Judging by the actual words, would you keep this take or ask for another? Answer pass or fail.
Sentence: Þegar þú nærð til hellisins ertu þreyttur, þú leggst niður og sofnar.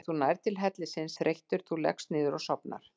fail